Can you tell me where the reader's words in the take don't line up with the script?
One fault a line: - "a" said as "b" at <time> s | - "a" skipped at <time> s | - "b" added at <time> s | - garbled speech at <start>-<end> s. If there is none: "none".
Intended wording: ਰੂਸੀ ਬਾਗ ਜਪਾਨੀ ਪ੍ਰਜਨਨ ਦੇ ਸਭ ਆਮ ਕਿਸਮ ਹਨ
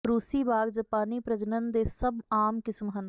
none